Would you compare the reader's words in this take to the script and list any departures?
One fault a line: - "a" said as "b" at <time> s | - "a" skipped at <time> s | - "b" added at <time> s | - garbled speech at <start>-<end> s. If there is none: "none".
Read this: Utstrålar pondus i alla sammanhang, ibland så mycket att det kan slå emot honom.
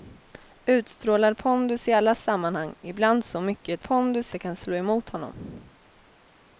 - "att" said as "pondus" at 3.8 s